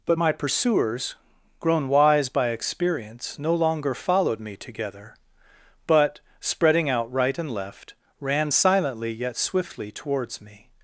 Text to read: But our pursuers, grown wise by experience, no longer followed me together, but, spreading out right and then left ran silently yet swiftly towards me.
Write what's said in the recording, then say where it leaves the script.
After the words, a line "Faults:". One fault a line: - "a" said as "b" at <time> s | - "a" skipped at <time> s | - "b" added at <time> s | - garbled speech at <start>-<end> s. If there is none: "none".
But my pursuers, grown wise by experience, no longer followed me together, but, spreading out right and left ran silently yet swiftly towards me.
Faults:
- "our" said as "my" at 0.2 s
- "then" skipped at 7.5 s